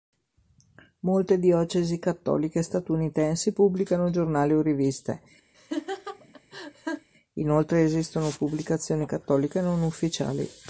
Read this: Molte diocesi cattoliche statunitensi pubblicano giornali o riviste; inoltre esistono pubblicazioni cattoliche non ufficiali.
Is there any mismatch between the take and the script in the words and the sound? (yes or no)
yes